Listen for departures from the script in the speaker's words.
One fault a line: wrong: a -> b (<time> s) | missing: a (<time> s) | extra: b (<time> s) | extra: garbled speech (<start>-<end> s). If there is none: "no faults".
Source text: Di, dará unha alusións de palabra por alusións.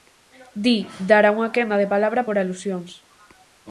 wrong: alusións -> quenda (1.6 s)